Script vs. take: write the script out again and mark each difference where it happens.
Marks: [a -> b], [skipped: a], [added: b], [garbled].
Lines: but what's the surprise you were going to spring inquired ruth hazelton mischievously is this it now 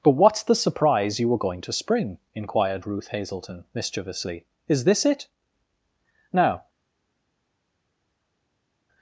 but what's the surprise you were going to spring inquired ruth hazelton mischievously is this it now